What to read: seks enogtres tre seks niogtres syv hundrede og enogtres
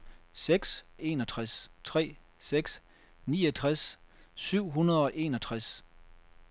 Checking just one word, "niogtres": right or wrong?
right